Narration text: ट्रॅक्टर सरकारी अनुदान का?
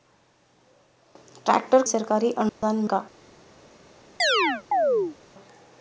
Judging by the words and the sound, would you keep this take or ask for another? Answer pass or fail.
fail